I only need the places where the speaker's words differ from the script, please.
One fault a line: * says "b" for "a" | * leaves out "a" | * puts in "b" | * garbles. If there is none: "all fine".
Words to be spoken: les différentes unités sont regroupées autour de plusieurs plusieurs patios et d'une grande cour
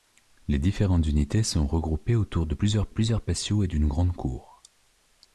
all fine